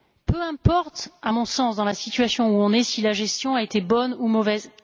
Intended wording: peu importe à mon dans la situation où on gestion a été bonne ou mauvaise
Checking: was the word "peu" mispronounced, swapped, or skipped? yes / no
no